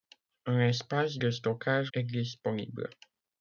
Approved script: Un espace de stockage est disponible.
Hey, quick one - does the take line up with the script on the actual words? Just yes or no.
yes